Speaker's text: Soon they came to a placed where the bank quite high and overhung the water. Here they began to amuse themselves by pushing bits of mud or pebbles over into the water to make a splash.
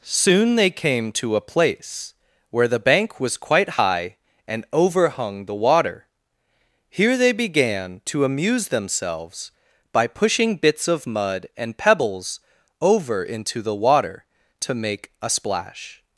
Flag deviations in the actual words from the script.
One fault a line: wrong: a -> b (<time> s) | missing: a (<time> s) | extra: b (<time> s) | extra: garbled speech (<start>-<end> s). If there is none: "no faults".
wrong: placed -> place (1.4 s)
extra: was (3.2 s)
wrong: or -> and (11.6 s)